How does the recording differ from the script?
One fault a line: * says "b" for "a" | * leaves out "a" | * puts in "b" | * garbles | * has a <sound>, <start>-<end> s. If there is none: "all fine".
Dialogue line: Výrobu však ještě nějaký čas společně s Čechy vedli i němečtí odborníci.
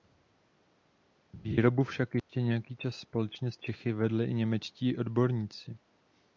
* has a dropout, 2.2-2.3 s